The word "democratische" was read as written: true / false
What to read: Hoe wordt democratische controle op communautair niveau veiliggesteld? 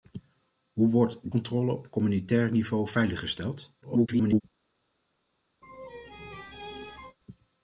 false